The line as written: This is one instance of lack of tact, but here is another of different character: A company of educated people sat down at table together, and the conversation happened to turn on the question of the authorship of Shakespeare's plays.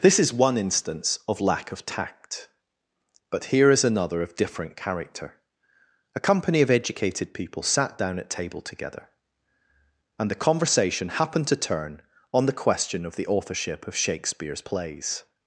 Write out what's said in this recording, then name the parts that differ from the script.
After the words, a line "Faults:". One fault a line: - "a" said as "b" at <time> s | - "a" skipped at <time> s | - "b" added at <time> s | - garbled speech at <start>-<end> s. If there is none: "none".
This is one instance of lack of tact, but here is another of different character: A company of educated people sat down at table together, and the conversation happened to turn on the question of the authorship of Shakespeare's plays.
Faults:
none